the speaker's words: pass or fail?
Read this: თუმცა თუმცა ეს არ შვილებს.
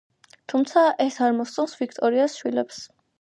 fail